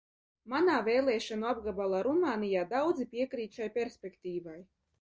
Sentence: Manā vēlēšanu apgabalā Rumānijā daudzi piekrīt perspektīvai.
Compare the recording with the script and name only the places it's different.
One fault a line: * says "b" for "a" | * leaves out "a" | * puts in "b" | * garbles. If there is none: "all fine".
* puts in "šai"